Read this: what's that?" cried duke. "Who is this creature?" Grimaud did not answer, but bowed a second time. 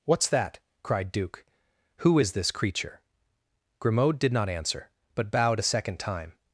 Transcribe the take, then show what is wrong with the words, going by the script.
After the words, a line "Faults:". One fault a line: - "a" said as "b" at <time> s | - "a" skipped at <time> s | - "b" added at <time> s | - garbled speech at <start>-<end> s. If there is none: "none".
what's that?" cried duke. "Who is this creature?" Grimaud did not answer, but bowed a second time.
Faults:
none